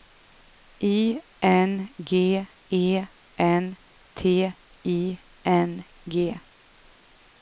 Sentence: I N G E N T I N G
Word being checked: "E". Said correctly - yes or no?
yes